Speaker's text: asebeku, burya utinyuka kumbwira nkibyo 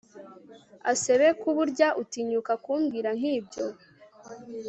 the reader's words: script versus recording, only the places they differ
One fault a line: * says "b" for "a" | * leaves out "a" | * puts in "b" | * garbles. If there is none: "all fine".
all fine